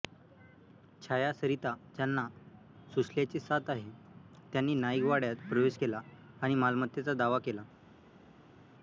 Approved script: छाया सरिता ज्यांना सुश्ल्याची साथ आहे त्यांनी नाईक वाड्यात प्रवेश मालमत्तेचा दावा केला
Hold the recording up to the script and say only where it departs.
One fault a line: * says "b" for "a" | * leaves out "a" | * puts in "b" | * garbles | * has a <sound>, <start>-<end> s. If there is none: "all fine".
* puts in "केला आणि"